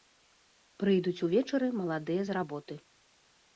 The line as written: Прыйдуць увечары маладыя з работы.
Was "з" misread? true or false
false